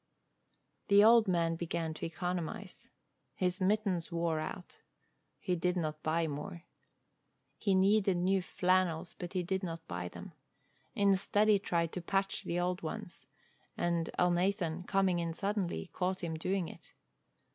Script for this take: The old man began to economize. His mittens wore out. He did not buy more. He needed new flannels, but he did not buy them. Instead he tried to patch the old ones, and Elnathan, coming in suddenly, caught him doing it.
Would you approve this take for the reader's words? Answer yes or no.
yes